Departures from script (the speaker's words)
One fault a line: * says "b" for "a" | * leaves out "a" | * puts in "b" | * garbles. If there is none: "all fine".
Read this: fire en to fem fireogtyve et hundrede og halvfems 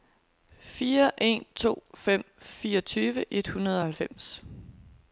all fine